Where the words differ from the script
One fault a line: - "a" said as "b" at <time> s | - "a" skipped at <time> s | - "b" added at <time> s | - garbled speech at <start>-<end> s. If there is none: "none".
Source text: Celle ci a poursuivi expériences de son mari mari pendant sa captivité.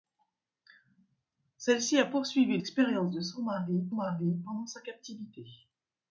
none